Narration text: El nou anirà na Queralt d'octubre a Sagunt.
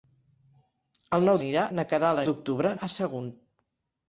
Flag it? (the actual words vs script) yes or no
no